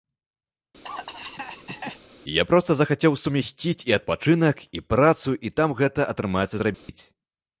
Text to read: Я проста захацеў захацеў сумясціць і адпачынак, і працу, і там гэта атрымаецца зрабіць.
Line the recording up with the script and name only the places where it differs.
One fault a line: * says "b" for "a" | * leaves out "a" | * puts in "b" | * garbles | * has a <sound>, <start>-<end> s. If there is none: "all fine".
* has a cough, 0.8-2.0 s
* leaves out "захацеў"
* has a dropout, 6.7-6.9 s